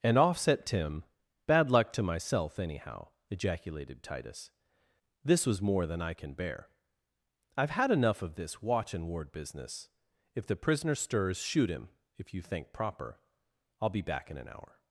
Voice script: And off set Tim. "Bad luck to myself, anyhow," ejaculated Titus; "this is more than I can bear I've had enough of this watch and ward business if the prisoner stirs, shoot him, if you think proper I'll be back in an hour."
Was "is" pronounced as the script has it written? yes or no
no